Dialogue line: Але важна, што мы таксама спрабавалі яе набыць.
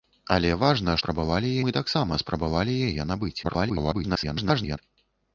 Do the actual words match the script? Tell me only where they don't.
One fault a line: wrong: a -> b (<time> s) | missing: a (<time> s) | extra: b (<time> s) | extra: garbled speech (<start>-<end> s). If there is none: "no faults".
wrong: што -> спрабавалі (1.0 s)
extra: garbled speech (3.4-4.8 s)